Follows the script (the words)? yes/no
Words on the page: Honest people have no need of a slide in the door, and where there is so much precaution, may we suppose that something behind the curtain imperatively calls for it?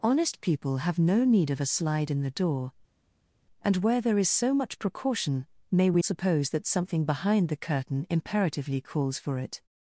yes